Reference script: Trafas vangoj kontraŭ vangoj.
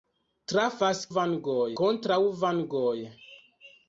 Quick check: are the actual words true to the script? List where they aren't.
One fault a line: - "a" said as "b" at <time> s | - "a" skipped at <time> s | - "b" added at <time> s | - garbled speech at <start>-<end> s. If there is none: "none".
none